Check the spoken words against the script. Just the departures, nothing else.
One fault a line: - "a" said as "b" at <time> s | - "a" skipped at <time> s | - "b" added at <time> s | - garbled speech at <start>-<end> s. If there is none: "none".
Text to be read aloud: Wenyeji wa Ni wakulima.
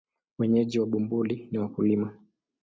- "Bumbuli" added at 0.9 s